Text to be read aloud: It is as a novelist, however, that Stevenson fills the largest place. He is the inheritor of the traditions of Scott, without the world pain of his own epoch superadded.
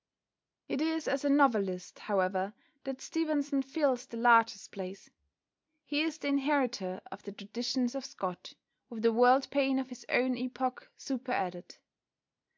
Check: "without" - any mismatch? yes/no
yes